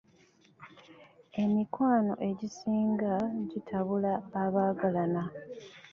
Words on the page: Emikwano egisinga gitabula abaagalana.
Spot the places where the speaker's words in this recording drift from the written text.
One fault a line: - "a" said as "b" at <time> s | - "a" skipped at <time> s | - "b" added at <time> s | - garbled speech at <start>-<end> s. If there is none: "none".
none